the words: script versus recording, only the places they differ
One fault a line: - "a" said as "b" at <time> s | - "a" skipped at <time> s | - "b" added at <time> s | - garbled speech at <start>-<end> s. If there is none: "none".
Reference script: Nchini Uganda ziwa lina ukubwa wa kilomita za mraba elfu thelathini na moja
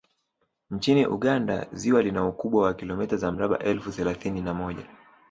none